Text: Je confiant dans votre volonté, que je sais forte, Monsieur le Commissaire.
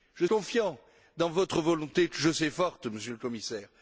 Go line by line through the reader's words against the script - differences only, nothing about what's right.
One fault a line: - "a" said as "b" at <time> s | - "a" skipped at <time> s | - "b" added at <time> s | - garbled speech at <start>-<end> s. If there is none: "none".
none